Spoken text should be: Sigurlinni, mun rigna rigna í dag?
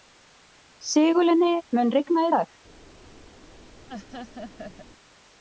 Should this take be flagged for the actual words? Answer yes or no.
yes